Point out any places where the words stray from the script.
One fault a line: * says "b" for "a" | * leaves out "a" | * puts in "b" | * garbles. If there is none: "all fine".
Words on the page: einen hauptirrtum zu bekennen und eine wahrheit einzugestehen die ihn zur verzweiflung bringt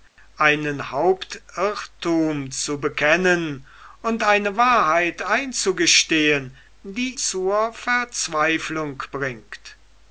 * leaves out "ihn"